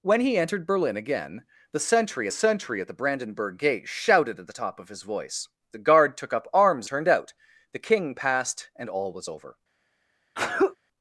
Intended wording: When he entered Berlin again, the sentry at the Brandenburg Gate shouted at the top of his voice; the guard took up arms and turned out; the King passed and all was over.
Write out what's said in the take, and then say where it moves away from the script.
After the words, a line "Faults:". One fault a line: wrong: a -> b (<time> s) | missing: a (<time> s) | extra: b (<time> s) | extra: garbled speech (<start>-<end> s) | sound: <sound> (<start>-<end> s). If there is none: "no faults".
When he entered Berlin again, the sentry sentry at the Brandenburg Gate shouted at the top of his voice; the guard took up arms turned out; the King passed and all was over.
Faults:
extra: sentry (2.3 s)
missing: and (6.9 s)
sound: sneeze (10.3-10.8 s)